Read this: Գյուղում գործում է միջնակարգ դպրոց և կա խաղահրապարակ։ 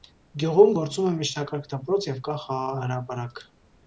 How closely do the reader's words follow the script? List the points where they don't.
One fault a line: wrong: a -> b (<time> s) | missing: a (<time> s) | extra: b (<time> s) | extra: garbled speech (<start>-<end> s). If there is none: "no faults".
no faults